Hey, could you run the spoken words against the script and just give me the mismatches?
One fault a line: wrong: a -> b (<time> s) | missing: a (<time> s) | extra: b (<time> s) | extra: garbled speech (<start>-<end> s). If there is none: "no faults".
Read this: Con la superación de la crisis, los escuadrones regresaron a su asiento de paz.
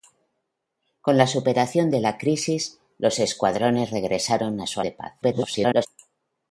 missing: asiento (4.8 s)
extra: garbled speech (5.2-5.9 s)